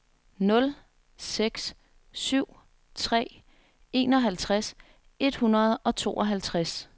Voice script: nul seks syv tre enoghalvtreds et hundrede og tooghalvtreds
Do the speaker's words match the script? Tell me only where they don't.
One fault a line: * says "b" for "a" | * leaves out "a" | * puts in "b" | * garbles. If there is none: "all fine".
all fine